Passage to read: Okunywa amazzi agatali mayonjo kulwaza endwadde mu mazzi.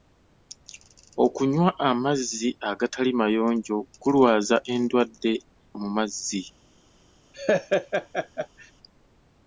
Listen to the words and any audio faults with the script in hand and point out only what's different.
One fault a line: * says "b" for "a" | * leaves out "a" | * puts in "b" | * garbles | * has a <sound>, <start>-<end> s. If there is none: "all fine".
* has a laugh, 7.3-8.7 s